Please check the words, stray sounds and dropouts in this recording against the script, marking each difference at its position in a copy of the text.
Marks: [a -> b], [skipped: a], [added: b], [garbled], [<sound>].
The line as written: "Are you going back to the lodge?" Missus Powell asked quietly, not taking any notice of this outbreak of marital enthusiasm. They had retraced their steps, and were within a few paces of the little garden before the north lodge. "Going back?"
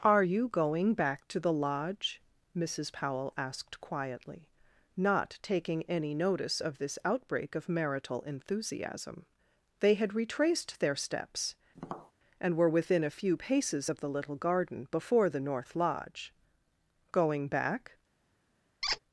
"Are you going back to the lodge?" Missus Powell asked quietly, not taking any notice of this outbreak of marital enthusiasm. They had retraced their steps, [tap] and were within a few paces of the little garden before the north lodge. "Going back?" [squeak]